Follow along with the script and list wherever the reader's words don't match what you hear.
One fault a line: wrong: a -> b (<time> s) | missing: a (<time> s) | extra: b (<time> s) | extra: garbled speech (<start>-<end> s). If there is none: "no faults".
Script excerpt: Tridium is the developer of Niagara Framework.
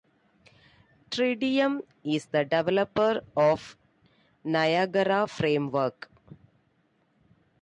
no faults